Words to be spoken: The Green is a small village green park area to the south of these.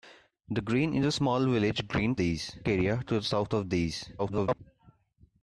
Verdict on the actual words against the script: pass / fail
fail